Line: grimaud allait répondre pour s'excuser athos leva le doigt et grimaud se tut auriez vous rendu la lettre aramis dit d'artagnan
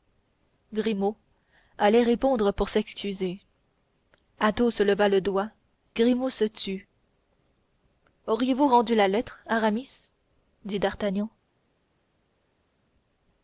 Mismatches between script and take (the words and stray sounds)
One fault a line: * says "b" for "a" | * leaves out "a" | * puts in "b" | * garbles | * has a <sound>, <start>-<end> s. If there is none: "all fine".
* leaves out "et"